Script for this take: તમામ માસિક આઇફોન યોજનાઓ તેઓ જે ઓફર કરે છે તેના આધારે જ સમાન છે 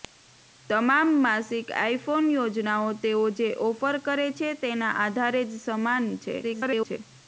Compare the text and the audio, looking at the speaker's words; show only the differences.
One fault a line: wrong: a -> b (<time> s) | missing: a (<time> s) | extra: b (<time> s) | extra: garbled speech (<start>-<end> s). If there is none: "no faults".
extra: garbled speech (6.4-7.0 s)